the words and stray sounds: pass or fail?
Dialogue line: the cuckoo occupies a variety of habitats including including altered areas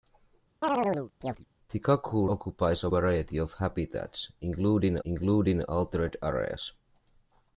fail